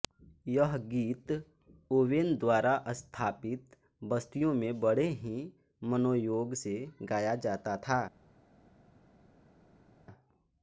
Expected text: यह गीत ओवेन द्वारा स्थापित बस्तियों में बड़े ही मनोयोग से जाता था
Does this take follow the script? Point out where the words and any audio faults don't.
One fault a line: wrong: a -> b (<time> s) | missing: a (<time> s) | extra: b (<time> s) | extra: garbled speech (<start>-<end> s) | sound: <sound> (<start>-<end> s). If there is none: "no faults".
extra: गाया (7.0 s)